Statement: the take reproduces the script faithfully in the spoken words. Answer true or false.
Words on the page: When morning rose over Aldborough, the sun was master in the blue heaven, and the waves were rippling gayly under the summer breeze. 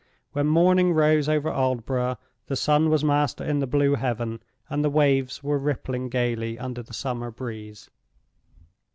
true